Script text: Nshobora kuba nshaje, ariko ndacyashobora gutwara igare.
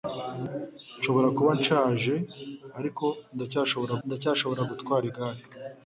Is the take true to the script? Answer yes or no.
no